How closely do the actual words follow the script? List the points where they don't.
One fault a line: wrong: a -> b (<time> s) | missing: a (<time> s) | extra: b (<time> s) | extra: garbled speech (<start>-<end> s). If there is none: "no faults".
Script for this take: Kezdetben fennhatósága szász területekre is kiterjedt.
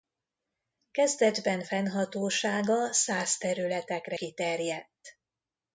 missing: is (4.2 s)